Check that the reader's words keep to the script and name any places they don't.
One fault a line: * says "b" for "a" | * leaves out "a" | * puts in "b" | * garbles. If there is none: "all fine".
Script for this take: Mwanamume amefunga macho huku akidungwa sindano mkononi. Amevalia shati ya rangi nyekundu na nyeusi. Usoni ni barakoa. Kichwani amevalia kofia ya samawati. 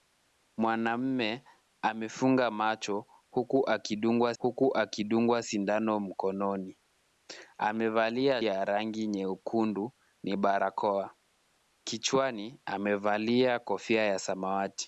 * puts in "huku akidungwa"
* leaves out "shati"
* leaves out "na nyeusi Usoni"